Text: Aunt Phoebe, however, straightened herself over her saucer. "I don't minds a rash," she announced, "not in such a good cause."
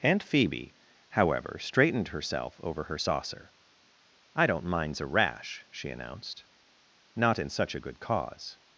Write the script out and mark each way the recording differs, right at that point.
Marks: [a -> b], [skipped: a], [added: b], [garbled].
Aunt Phoebe, however, straightened herself over her saucer. "I don't minds a rash," she announced, "not in such a good cause."